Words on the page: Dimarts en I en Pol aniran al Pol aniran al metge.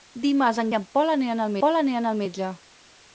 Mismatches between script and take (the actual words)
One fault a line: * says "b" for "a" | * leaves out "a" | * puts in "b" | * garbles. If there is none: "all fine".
all fine